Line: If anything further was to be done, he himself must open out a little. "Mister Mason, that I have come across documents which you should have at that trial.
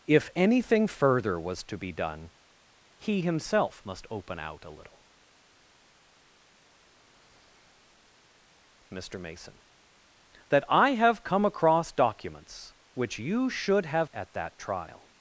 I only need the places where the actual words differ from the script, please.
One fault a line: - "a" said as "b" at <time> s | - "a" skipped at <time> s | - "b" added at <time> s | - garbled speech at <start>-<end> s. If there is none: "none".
none